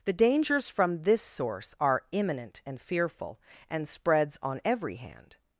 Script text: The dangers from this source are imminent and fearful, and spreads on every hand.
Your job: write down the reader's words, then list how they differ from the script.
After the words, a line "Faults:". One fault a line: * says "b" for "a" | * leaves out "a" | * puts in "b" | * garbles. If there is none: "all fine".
The dangers from this source are imminent and fearful, and spreads on every hand.
Faults:
all fine